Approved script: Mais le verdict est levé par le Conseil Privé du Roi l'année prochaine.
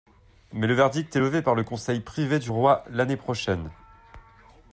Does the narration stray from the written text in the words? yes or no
no